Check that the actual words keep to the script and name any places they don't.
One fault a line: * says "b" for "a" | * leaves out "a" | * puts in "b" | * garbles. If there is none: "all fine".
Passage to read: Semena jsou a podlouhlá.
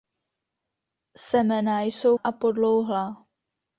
all fine